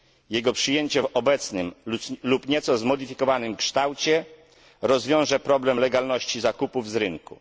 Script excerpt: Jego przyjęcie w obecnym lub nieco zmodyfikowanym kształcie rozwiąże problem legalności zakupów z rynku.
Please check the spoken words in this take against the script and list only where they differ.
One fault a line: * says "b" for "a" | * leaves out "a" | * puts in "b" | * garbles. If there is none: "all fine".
all fine